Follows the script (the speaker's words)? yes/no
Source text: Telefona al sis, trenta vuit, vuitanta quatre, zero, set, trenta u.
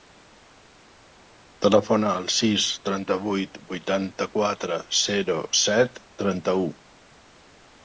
yes